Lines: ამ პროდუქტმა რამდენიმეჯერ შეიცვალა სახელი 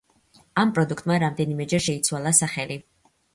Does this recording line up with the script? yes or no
yes